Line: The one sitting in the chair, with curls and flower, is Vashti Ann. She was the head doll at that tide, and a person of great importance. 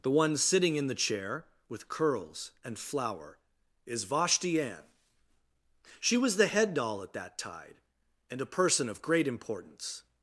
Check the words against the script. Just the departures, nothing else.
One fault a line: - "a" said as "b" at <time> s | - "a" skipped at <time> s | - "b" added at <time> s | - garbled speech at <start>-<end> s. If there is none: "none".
none